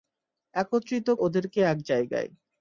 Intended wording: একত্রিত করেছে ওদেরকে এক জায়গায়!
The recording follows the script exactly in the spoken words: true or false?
false